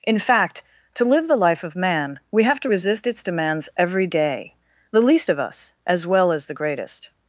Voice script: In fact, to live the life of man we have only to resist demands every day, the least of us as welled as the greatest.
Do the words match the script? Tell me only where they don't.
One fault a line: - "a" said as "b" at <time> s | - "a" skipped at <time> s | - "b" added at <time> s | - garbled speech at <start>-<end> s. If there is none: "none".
- "only" skipped at 2.6 s
- "its" added at 3.0 s
- "welled" said as "well" at 6.0 s